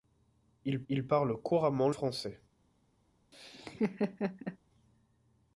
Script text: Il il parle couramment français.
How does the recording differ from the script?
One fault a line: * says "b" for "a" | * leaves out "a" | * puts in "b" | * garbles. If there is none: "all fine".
all fine